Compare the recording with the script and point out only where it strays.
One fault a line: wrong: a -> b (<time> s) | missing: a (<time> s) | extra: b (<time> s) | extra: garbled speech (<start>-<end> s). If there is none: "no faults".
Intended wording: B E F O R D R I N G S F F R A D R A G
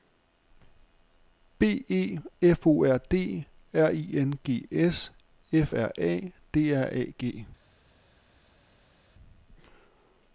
missing: F (5.7 s)